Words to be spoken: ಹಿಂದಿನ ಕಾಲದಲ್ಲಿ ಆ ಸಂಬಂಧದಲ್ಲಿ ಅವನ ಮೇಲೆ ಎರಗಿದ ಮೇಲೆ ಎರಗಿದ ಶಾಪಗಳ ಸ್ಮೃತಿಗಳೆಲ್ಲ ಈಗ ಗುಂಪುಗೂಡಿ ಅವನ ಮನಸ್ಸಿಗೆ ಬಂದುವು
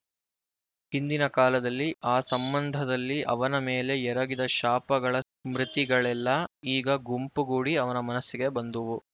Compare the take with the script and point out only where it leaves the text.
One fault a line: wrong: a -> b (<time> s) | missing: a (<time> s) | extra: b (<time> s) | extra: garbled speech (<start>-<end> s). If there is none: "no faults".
missing: ಮೇಲೆ ಎರಗಿದ (4.5 s)